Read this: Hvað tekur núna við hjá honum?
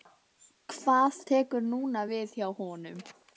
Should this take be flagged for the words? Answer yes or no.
no